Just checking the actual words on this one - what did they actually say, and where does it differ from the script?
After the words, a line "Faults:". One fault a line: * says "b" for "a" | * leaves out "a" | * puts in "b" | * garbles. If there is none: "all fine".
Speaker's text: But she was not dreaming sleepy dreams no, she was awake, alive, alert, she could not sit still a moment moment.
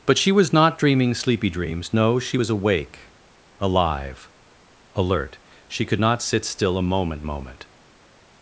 But she was not dreaming sleepy dreams no, she was awake, alive, alert, she could not sit still a moment moment.
Faults:
all fine